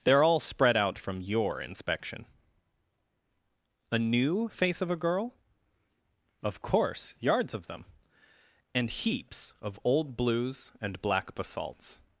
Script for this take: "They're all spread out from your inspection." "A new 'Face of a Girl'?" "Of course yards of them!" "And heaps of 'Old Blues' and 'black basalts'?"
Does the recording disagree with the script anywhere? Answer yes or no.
no